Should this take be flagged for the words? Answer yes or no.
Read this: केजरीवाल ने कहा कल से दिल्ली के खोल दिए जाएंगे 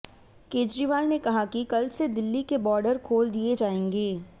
yes